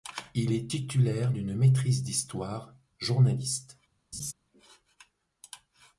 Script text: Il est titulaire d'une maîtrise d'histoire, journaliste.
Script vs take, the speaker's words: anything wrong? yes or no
no